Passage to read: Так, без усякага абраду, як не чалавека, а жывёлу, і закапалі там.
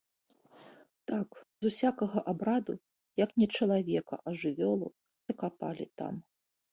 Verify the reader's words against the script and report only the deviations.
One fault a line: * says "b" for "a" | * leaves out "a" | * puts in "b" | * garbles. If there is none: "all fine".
* leaves out "без"
* leaves out "і"